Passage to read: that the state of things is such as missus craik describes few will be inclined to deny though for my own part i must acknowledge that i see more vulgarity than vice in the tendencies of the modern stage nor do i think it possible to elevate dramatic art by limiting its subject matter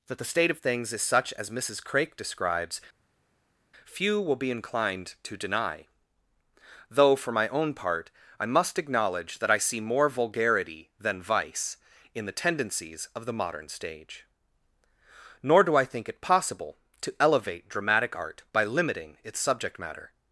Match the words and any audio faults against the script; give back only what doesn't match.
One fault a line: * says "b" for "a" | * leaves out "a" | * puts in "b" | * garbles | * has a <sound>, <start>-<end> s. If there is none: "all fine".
all fine